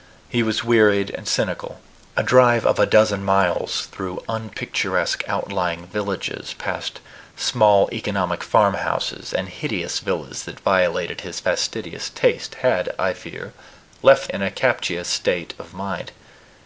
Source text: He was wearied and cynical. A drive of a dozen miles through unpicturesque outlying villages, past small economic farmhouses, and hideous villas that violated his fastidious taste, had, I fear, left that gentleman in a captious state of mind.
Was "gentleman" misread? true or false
true